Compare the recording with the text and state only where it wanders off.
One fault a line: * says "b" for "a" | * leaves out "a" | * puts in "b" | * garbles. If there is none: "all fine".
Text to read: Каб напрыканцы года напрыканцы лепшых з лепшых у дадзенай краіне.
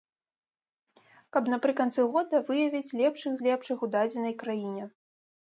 * says "выявіць" for "напрыканцы"